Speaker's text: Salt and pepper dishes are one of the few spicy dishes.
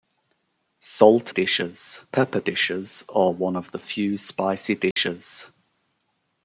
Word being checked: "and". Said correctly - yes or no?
no